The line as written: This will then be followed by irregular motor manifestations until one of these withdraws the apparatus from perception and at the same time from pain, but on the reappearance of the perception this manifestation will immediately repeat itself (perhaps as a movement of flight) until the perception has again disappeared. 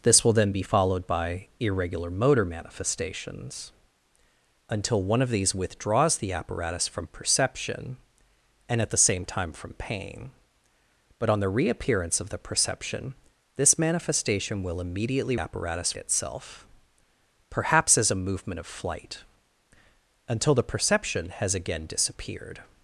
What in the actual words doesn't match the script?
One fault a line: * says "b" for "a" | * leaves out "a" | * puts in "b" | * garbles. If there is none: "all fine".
* says "apparatus" for "repeat"